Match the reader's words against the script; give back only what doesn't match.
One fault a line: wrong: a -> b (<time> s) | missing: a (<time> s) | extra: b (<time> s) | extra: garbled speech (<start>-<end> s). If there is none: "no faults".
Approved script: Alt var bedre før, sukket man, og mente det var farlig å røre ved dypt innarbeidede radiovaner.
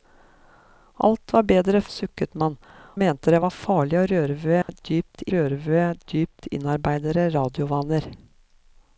missing: før (1.8 s)
missing: og (2.6 s)
extra: røre ved dypt (5.4 s)